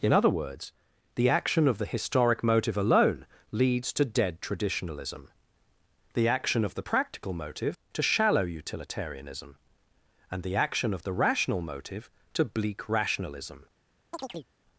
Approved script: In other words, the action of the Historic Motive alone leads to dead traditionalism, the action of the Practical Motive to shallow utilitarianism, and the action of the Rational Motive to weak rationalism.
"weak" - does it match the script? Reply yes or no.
no